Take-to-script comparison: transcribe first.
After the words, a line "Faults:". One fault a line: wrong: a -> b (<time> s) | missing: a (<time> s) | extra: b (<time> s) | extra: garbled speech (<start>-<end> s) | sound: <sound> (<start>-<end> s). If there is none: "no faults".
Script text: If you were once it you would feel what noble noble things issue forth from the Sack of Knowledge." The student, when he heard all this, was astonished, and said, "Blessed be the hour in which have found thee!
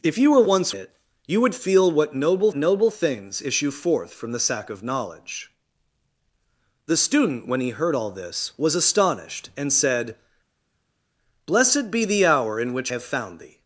If you were once it you would feel what noble noble things issue forth from the Sack of Knowledge." The student, when he heard all this, was astonished, and said, "Blessed be the hour in which have found thee!
Faults:
no faults